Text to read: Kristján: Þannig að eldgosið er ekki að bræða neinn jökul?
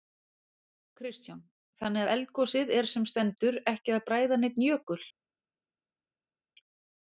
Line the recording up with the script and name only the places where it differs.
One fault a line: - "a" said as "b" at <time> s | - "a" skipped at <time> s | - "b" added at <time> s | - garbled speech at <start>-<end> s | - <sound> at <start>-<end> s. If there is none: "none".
- "sem stendur" added at 2.9 s